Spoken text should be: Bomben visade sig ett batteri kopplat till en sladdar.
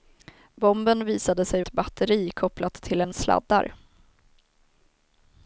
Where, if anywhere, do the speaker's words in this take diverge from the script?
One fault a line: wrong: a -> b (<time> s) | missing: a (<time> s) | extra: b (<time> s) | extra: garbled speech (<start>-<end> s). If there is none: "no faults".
no faults